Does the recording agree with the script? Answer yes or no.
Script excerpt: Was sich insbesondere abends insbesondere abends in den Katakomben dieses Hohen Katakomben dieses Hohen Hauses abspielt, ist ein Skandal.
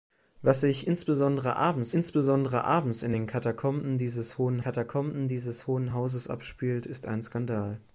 yes